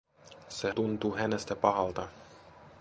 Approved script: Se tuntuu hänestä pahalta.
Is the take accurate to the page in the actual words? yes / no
yes